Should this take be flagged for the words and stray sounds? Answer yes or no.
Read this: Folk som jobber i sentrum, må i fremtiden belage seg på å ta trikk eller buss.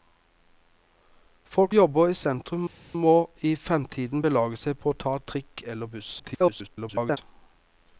yes